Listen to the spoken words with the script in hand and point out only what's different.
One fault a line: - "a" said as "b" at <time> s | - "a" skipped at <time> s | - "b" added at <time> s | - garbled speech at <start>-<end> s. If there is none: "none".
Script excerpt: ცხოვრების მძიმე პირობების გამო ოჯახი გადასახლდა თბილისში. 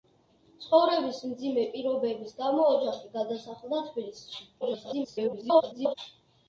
- garbled speech at 4.6-5.9 s